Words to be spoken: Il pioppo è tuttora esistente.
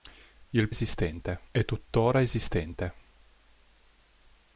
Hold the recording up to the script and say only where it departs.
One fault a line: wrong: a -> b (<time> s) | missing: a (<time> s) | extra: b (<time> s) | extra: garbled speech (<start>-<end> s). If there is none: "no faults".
wrong: pioppo -> esistente (0.7 s)